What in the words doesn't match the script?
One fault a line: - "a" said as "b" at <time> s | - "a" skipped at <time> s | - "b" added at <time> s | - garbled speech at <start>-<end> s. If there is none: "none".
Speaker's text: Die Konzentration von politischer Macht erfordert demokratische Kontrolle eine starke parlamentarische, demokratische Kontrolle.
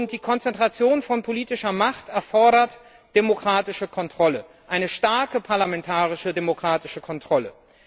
none